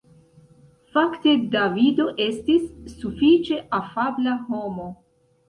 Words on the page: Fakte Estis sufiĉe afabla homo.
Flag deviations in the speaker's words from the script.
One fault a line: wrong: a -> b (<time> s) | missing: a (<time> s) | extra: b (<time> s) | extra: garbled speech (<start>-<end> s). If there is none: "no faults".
extra: Davido (1.6 s)